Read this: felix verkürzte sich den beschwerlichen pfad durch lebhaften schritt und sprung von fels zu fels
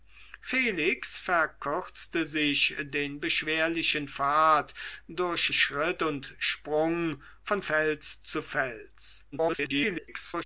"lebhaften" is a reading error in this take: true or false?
true